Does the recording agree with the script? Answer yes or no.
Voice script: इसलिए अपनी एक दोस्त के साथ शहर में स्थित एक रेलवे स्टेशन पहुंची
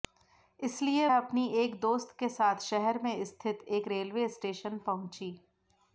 yes